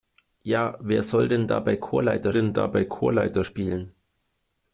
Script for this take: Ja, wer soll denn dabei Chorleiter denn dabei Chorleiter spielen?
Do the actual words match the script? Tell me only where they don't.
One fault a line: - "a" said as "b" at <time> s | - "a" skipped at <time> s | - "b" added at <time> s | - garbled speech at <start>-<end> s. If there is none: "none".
none